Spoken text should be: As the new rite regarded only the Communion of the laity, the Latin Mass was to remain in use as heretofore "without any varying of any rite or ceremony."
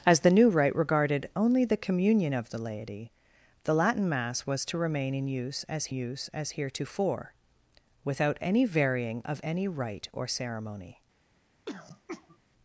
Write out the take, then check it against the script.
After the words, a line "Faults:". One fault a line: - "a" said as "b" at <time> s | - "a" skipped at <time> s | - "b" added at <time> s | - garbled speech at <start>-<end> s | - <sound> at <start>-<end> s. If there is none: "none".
As the new rite regarded only the Communion of the laity, the Latin Mass was to remain in use as use as heretofore "without any varying of any rite or ceremony."
Faults:
- "use as" added at 5.9 s
- throat clearing at 11.7-12.4 s